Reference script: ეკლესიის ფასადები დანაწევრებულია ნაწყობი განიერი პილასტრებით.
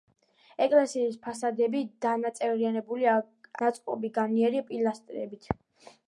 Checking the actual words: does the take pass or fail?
pass